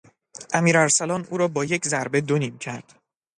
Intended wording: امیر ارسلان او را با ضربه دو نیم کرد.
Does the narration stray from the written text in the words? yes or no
yes